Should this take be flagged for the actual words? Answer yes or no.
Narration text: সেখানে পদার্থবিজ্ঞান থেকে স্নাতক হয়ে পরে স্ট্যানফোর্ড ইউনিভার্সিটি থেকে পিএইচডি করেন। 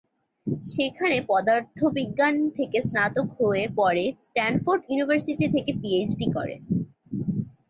no